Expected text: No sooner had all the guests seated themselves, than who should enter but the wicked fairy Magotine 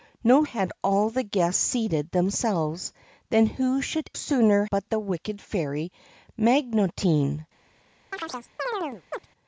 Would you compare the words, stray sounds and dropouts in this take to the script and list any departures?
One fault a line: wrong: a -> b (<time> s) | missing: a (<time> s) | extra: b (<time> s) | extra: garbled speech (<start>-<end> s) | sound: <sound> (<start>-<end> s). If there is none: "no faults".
missing: sooner (0.5 s)
wrong: enter -> sooner (4.1 s)
sound: chirp (8.1-9.3 s)